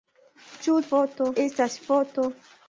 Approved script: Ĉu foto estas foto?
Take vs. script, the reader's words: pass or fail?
pass